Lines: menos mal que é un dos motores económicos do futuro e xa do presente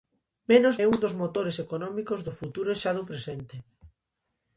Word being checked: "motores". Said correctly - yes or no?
yes